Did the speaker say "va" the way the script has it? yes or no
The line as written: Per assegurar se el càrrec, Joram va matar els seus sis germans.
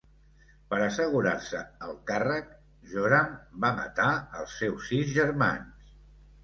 yes